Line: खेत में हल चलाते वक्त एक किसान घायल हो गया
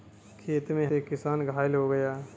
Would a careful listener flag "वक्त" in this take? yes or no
yes